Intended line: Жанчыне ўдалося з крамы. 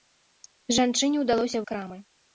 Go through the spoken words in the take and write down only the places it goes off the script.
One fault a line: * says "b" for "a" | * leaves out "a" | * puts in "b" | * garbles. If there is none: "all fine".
all fine